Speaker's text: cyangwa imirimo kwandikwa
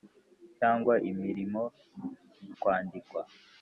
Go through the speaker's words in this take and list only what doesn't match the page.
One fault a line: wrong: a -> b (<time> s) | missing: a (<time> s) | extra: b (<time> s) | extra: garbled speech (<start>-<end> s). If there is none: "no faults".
no faults